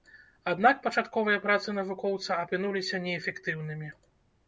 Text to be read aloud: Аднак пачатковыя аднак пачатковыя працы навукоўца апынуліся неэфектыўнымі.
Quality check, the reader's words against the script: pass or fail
fail